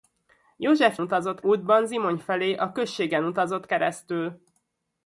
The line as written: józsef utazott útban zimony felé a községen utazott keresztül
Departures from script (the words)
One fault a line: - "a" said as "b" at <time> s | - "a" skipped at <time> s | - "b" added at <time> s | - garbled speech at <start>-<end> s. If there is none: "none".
none